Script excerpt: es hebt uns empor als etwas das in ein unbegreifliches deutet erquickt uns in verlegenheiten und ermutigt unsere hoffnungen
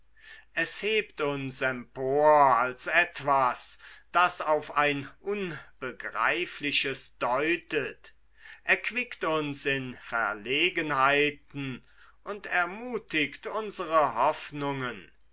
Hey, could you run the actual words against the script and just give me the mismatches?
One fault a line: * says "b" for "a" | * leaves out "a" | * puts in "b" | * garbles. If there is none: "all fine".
* says "auf" for "in"